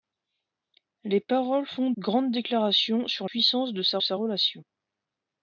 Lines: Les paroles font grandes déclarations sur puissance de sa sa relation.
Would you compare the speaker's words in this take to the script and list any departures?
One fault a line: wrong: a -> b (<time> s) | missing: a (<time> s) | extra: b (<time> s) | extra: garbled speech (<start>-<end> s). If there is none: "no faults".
no faults